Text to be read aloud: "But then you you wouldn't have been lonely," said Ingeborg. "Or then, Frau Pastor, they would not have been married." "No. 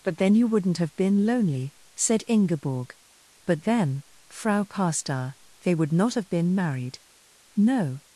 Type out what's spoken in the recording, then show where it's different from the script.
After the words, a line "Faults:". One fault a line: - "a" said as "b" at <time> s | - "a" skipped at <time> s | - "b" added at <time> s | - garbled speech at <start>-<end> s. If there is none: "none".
"But then you wouldn't have been lonely," said Ingeborg. "But then, Frau Pastor, they would not have been married." "No.
Faults:
- "you" skipped at 0.5 s
- "Or" said as "But" at 3.5 s